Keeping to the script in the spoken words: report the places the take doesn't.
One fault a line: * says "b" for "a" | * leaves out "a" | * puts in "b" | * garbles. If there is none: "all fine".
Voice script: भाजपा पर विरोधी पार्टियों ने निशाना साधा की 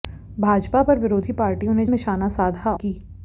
all fine